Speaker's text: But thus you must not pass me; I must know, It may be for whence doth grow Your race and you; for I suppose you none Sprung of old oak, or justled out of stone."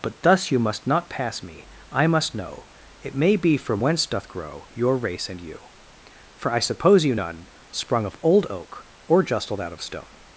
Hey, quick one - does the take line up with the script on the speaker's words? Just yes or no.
yes